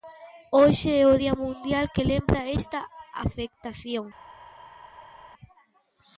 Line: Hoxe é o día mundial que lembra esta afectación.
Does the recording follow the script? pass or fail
pass